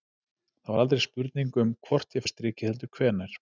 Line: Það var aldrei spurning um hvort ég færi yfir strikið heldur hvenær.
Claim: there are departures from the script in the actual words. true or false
true